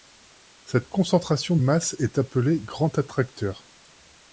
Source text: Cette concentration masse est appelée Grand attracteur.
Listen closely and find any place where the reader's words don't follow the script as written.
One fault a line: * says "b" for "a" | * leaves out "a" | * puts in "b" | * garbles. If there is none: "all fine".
all fine